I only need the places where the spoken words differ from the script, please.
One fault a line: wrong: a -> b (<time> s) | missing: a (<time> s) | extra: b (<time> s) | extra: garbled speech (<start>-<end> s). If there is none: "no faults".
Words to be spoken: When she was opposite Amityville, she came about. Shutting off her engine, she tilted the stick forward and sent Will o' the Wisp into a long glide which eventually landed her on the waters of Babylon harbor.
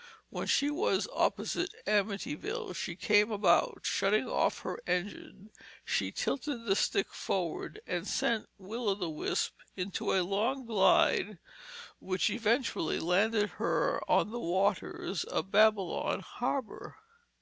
no faults